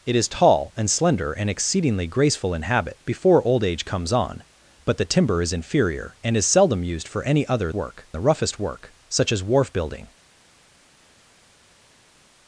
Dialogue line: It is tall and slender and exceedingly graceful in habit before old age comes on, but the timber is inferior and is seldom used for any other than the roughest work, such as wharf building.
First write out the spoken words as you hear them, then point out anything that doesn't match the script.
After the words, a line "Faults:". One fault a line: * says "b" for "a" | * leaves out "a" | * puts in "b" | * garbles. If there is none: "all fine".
It is tall and slender and exceedingly graceful in habit before old age comes on, but the timber is inferior and is seldom used for any other work the roughest work, such as wharf building.
Faults:
* says "work" for "than"